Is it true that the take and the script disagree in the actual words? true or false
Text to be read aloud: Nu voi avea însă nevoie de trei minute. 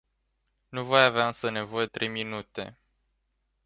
true